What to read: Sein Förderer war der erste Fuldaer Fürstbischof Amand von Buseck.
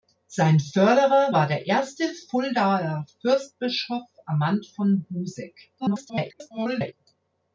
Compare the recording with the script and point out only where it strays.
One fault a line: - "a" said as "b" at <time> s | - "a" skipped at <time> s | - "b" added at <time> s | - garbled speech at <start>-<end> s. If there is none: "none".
- garbled speech at 5.8-6.9 s